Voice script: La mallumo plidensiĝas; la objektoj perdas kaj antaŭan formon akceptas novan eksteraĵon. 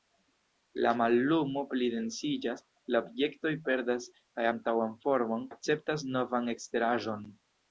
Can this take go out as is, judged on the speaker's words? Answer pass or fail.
pass